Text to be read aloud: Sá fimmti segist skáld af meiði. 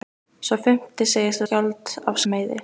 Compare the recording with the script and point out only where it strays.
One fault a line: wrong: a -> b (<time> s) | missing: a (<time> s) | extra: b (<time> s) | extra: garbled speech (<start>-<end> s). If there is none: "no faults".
no faults